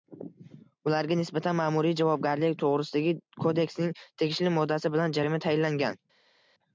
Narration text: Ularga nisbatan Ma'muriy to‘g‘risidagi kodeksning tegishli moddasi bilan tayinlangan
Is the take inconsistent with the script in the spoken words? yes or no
yes